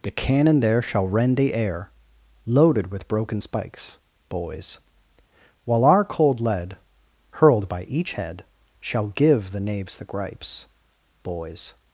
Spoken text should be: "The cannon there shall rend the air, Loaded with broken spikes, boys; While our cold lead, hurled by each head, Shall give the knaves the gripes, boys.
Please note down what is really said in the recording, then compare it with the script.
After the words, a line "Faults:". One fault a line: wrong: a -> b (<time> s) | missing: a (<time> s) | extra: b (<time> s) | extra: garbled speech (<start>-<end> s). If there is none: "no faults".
"The cannon there shall rend the air, Loaded with broken spikes, boys; While our cold lead, hurled by each head, Shall give the knaves the gripes, boys.
Faults:
no faults